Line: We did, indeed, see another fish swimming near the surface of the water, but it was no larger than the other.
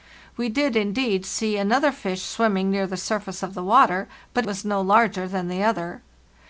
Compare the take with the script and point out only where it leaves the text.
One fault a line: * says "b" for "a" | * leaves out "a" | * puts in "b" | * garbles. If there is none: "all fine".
* leaves out "it"